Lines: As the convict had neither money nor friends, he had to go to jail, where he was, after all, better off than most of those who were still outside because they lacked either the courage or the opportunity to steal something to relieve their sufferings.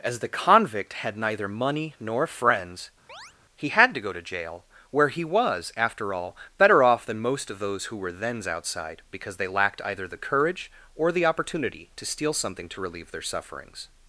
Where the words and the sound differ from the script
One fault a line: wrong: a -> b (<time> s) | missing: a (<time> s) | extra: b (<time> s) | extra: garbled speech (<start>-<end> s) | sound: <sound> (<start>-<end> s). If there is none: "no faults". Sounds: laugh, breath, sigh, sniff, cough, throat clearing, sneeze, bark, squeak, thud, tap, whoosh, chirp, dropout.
sound: chirp (3.1-3.3 s)
wrong: still -> thens (8.1 s)